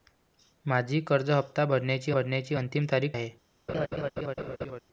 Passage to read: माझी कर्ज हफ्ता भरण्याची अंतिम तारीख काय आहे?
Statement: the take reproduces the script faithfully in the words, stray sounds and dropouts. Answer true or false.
false